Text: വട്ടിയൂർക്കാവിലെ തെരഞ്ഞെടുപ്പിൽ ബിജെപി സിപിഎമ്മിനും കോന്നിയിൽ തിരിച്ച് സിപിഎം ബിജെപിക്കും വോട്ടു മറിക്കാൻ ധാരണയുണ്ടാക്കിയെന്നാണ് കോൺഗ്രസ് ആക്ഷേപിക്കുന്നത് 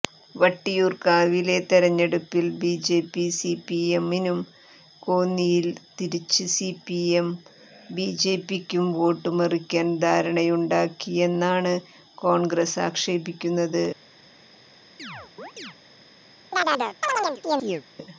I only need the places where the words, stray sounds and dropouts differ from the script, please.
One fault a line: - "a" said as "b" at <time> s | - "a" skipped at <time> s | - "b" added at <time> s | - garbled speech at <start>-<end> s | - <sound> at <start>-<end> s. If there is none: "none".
- chirp at 15.0-15.8 s
- chirp at 16.5-17.8 s